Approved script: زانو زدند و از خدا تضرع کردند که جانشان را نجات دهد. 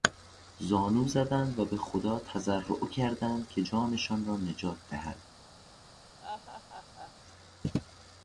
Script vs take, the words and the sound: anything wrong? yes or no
yes